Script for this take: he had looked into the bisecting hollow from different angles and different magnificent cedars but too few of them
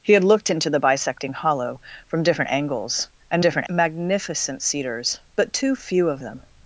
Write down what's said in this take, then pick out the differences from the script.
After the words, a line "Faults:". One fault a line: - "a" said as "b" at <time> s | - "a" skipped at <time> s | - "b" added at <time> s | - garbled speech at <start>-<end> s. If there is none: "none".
he had looked into the bisecting hollow from different angles and different magnificent cedars but too few of them
Faults:
none